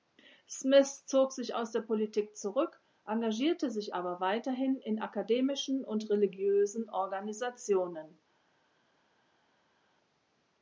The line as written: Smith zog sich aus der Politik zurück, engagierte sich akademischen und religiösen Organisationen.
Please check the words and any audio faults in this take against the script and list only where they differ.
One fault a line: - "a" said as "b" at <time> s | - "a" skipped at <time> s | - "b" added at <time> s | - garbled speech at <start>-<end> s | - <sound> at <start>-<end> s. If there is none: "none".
- "aber weiterhin in" added at 3.9 s